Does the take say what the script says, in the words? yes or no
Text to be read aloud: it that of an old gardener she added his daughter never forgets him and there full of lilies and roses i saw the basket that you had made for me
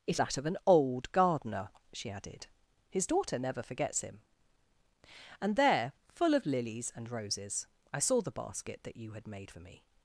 yes